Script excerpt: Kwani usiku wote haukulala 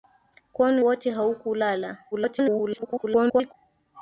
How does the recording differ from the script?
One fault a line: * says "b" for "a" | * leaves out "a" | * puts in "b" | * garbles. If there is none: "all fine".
* leaves out "usiku"
* garbles